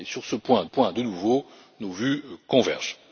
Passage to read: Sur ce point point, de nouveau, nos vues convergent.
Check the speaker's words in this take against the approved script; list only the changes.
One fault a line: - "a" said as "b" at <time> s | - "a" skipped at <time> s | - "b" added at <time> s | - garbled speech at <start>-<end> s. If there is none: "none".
none